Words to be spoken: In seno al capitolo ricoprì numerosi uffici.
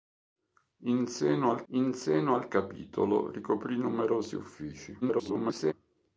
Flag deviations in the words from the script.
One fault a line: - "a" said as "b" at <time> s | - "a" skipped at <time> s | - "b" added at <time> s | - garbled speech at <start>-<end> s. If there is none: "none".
- "in seno al" added at 1.7 s
- garbled speech at 5.0-5.7 s